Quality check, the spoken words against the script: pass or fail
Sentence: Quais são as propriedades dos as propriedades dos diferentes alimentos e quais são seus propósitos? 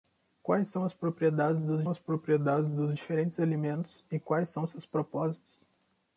pass